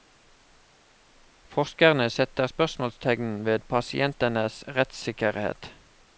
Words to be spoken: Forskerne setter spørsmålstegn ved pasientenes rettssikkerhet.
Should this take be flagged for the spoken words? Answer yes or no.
no